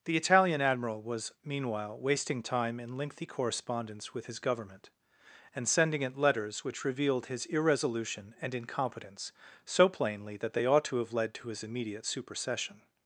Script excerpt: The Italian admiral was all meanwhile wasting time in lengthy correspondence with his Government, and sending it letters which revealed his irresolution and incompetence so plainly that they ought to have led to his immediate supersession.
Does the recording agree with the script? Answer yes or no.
no